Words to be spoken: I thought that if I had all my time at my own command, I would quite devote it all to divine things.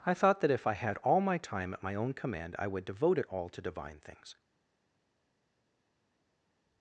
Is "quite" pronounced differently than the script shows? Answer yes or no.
yes